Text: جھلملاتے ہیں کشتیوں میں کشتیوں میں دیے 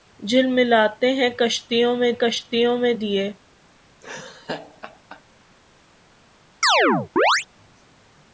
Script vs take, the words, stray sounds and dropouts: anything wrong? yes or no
yes